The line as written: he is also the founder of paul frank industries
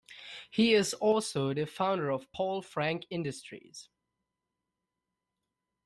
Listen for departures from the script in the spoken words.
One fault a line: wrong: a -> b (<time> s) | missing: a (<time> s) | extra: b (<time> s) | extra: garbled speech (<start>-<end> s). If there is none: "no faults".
no faults